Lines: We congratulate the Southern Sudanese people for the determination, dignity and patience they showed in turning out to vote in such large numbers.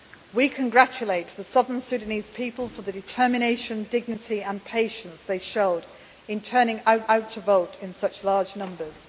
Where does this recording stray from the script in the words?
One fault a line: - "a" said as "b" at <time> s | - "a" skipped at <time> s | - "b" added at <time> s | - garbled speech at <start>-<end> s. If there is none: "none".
- "out" added at 7.1 s